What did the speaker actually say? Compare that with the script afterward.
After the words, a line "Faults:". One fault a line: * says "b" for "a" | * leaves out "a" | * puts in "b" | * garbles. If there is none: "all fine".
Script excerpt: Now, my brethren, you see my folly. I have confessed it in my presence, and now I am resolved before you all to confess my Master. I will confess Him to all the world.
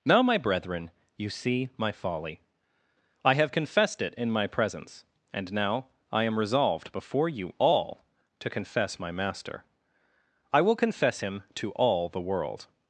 Now, my brethren, you see my folly. I have confessed it in my presence, and now I am resolved before you all to confess my Master. I will confess Him to all the world.
Faults:
all fine